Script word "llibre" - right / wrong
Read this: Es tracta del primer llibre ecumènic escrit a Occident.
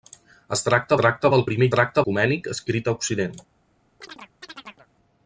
wrong